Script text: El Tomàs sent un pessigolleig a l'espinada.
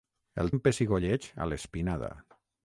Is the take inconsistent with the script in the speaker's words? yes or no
yes